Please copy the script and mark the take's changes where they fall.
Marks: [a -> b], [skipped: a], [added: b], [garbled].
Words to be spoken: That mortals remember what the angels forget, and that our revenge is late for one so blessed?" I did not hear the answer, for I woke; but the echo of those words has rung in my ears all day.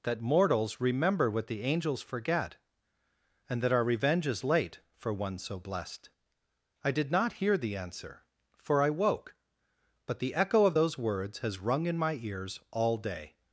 That mortals remember what the angels forget, and that our revenge is late for one so blessed?" I did not hear the answer, for I woke; but the echo of those words has rung in my ears all day.